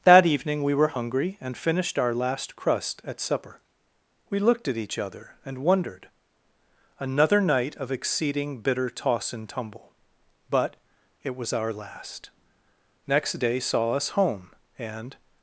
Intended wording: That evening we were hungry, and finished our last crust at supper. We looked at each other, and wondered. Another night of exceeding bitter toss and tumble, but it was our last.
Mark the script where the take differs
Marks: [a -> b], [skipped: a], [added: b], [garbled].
That evening we were hungry, and finished our last crust at supper. We looked at each other, and wondered. Another night of exceeding bitter toss and tumble, but it was our last. [added: Next day saw us home and]